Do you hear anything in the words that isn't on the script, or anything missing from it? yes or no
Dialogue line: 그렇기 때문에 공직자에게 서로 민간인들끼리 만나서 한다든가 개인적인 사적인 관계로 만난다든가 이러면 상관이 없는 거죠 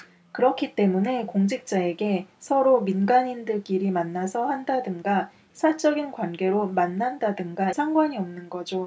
yes